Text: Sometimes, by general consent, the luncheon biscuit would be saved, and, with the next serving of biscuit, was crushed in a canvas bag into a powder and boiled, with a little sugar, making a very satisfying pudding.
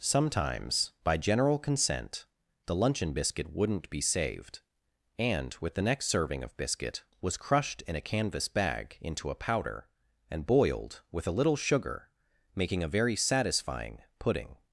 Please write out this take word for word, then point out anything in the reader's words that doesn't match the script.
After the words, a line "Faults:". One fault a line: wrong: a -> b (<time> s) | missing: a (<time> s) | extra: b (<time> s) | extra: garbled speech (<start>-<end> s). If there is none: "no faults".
Sometimes, by general consent, the luncheon biscuit wouldn't be saved, and, with the next serving of biscuit, was crushed in a canvas bag into a powder and boiled, with a little sugar, making a very satisfying pudding.
Faults:
wrong: would -> wouldn't (3.5 s)